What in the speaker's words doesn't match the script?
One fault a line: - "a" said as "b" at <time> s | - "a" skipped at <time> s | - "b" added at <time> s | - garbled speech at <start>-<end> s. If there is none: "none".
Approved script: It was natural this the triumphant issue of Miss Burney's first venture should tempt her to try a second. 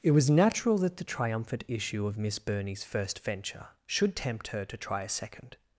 - "this" said as "that" at 0.8 s